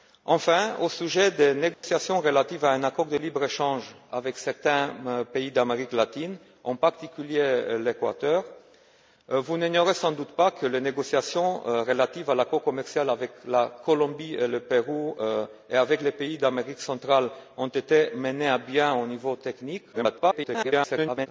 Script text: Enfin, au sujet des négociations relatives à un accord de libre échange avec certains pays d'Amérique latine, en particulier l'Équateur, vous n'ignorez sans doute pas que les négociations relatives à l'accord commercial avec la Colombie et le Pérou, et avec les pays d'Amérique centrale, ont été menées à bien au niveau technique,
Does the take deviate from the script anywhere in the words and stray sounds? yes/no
yes